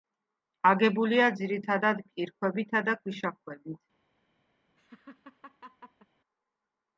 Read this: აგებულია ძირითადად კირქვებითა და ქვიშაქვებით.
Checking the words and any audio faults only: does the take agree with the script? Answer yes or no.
no